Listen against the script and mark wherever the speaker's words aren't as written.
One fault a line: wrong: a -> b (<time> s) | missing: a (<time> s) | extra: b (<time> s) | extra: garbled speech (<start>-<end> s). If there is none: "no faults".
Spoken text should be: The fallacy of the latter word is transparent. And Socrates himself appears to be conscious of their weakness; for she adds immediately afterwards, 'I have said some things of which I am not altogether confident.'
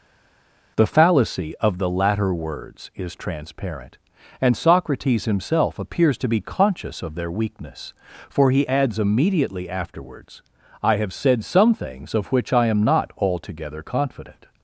wrong: word -> words (2.3 s)
wrong: she -> he (8.5 s)